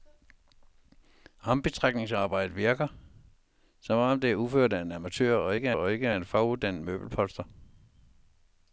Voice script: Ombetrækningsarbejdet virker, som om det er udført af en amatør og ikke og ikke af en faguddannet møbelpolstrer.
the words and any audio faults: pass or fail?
pass